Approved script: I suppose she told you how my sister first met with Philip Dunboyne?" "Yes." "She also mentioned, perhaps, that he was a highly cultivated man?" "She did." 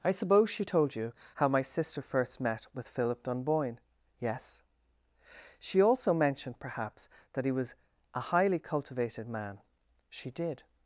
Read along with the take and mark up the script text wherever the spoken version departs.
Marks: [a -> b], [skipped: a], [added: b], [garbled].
I suppose she told you how my sister first met with Philip Dunboyne?" "Yes." "She also mentioned, perhaps, that he was a highly cultivated man?" "She did."